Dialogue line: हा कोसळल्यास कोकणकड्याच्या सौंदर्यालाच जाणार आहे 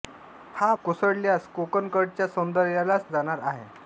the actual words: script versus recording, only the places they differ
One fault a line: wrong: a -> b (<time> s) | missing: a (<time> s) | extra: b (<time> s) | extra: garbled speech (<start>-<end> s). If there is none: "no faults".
no faults